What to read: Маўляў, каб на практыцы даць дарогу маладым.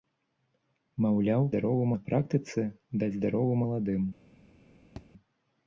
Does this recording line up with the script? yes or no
no